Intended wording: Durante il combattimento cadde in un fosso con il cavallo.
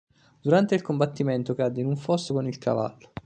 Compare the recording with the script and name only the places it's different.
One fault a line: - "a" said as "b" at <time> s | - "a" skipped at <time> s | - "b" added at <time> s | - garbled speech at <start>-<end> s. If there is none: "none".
none